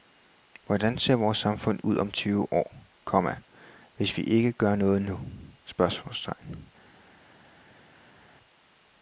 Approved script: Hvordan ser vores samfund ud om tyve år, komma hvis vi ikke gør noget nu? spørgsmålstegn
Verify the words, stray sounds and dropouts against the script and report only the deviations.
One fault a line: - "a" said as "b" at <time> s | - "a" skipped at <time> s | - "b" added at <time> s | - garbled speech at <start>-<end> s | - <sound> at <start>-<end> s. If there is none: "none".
none